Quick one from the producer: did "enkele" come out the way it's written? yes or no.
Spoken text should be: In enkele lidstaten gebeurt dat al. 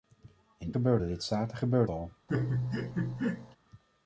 no